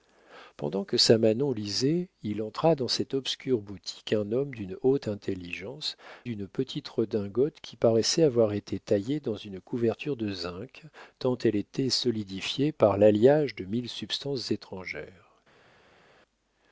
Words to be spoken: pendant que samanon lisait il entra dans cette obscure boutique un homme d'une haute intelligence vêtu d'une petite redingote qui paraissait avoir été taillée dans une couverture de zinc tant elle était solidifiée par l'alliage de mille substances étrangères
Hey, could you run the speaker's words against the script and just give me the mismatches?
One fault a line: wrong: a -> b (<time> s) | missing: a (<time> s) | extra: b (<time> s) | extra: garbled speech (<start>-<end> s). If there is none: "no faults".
missing: vêtu (6.0 s)